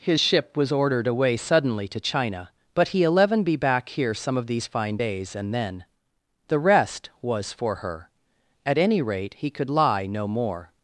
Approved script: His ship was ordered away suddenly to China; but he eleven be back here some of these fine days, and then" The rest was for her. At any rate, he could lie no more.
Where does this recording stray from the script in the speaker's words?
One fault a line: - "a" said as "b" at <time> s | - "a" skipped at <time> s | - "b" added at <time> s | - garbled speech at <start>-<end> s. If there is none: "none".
none